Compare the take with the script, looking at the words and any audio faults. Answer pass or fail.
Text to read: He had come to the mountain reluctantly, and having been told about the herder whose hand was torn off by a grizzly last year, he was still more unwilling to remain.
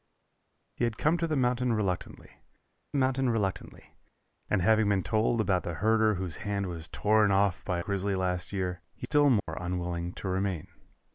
fail